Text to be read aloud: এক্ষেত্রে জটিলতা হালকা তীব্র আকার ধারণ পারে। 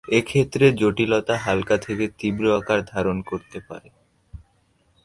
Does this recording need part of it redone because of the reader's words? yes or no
yes